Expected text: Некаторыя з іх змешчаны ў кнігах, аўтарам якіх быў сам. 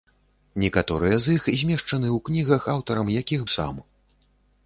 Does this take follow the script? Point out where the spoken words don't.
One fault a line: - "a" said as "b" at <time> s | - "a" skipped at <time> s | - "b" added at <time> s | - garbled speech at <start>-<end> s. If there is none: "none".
- "быў" skipped at 3.4 s